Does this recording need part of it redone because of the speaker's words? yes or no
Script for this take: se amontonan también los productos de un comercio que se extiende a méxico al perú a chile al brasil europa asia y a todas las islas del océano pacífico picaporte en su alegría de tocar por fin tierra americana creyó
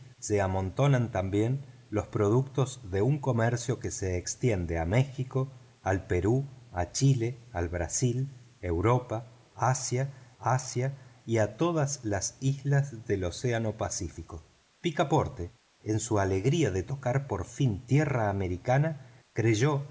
yes